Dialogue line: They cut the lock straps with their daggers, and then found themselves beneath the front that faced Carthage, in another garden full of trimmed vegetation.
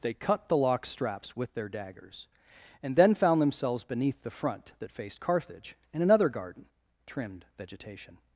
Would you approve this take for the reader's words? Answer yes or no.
no